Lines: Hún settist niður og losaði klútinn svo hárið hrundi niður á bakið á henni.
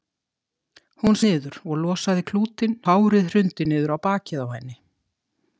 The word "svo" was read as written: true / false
false